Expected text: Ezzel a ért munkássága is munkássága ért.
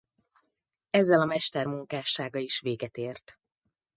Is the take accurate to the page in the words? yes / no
no